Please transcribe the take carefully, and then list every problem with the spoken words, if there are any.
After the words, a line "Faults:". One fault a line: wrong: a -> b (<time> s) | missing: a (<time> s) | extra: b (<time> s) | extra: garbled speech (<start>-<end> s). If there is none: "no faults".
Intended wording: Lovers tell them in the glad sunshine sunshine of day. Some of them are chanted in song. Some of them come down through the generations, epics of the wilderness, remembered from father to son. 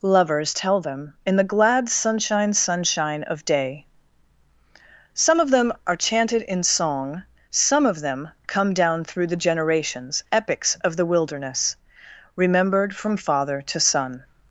Lovers tell them in the glad sunshine sunshine of day. Some of them are chanted in song. Some of them come down through the generations, epics of the wilderness, remembered from father to son.
Faults:
no faults